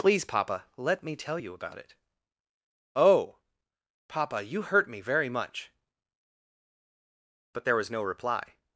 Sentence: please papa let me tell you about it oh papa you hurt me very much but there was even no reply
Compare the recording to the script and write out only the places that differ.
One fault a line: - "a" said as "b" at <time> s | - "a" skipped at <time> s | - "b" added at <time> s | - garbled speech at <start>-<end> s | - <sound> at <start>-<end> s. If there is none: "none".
- "even" skipped at 7.9 s